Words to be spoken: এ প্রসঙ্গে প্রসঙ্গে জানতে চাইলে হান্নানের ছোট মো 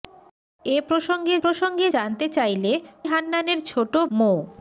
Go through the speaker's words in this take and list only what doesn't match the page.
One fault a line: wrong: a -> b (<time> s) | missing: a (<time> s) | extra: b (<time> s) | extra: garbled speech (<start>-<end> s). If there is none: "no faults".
no faults